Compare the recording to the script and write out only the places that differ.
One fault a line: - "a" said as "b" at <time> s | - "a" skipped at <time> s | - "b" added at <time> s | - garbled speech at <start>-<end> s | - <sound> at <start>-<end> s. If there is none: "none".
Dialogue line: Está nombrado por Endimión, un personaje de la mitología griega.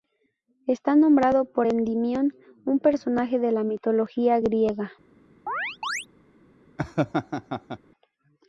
- chirp at 5.5-6.1 s
- laugh at 6.8-7.8 s